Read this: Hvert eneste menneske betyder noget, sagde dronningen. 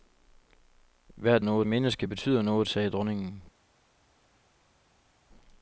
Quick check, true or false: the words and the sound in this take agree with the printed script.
false